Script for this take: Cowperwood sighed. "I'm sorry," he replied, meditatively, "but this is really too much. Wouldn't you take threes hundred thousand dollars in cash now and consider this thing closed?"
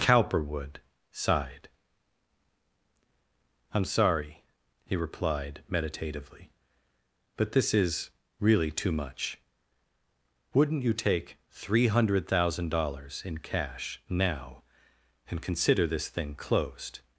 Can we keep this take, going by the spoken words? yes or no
no